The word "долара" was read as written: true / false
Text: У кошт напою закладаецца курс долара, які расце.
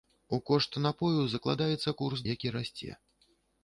false